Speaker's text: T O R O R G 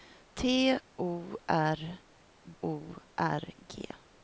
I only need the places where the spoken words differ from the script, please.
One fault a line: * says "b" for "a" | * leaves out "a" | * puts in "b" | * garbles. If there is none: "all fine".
all fine